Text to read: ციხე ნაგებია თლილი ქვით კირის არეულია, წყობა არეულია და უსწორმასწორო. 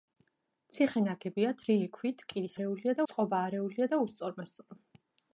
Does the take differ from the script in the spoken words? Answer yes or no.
no